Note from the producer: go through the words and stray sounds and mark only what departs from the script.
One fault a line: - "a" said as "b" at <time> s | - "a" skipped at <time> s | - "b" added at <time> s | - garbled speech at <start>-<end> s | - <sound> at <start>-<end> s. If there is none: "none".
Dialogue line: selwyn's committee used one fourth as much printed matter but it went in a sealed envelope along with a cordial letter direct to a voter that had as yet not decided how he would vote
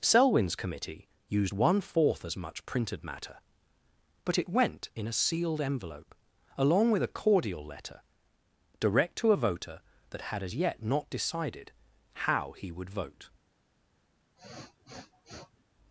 - sniff at 14.4-15.6 s